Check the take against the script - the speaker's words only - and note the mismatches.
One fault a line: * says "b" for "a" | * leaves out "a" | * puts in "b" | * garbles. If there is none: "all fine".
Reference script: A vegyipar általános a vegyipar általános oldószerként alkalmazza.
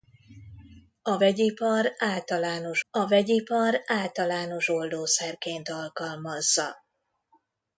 all fine